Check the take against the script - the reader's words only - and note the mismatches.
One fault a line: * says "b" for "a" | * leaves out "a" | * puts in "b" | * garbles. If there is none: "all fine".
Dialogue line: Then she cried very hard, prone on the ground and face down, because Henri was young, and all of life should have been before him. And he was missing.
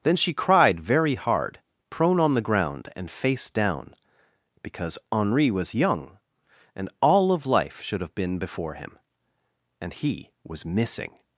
all fine